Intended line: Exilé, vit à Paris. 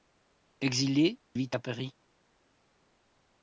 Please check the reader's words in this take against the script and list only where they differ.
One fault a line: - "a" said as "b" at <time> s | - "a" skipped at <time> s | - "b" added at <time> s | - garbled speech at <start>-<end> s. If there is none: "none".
none